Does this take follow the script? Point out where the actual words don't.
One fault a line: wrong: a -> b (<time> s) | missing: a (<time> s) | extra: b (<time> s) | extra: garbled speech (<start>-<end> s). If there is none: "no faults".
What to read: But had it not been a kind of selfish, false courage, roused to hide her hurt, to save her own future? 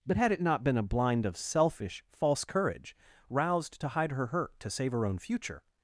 wrong: kind -> blind (0.8 s)